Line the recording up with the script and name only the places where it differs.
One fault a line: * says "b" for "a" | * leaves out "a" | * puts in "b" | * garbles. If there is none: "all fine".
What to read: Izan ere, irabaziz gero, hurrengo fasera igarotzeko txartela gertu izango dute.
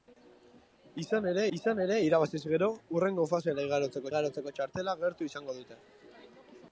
* puts in "izan ere"
* puts in "igarotzeko"